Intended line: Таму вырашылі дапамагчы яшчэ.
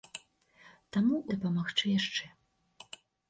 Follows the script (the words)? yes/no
no